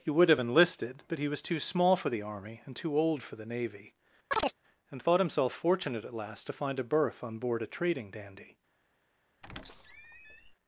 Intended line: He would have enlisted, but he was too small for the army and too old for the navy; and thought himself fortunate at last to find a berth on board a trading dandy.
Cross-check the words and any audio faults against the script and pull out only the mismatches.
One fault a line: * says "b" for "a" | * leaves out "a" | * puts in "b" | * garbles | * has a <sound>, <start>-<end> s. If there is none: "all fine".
* has a chirp, 4.3-4.6 s
* has a squeak, 9.4-10.6 s